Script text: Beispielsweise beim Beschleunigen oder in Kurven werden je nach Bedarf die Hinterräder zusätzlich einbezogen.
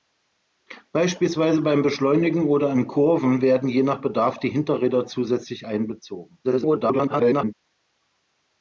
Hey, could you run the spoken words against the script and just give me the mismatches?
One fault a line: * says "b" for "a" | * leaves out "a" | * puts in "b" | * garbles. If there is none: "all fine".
* garbles